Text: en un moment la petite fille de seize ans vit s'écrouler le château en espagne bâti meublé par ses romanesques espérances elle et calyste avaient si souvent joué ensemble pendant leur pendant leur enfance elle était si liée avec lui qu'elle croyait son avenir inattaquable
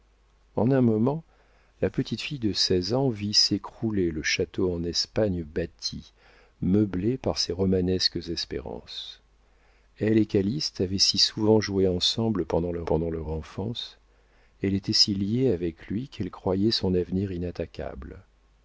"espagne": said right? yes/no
yes